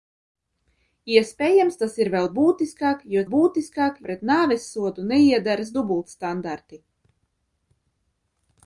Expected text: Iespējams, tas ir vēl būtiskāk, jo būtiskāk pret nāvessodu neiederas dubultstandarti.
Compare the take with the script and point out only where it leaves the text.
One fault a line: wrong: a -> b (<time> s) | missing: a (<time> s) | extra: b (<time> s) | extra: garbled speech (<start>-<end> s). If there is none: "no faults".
no faults